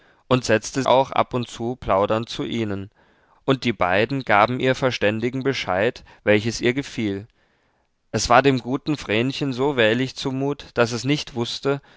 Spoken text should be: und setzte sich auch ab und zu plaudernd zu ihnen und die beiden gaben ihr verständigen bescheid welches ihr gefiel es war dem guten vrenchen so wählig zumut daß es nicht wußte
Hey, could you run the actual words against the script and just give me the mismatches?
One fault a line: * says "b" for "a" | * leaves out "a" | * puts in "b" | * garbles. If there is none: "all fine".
* leaves out "sich"